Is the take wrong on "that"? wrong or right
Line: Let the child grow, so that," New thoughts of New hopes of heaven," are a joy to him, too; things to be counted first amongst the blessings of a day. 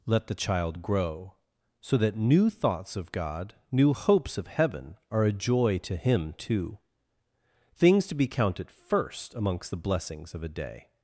right